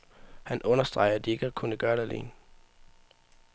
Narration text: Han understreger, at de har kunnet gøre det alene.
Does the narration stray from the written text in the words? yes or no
yes